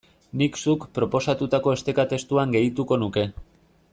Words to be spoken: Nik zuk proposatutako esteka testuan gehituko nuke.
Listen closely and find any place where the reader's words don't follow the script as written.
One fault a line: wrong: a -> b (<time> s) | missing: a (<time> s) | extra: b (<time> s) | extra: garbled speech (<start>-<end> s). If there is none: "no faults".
no faults